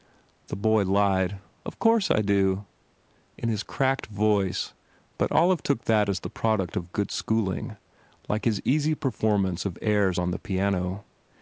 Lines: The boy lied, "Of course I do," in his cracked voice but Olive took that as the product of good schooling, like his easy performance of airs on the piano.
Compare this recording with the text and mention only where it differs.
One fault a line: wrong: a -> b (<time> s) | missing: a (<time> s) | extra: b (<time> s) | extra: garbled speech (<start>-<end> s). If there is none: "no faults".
no faults